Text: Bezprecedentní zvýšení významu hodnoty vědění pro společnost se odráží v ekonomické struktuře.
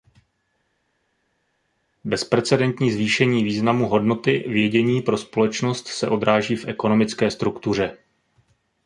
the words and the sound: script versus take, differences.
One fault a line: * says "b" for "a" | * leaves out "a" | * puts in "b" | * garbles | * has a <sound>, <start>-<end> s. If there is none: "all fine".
all fine